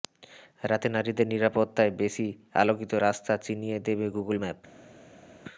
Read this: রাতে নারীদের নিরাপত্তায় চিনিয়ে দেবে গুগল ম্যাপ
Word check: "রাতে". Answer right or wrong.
right